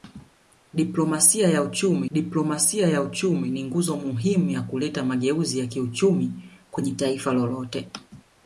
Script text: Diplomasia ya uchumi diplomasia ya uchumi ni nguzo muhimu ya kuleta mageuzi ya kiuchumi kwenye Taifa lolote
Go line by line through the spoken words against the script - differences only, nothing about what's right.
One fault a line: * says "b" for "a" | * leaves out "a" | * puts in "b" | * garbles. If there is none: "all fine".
all fine